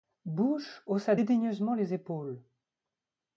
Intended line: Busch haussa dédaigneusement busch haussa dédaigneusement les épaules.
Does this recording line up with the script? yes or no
no